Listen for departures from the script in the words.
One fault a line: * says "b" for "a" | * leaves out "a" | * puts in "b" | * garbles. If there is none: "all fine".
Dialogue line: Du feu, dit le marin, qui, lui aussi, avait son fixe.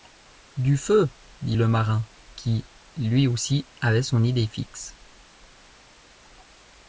* puts in "idée"